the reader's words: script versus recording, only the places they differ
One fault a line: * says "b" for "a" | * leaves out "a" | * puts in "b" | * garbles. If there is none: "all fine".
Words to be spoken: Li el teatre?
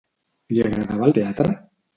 * puts in "agradava"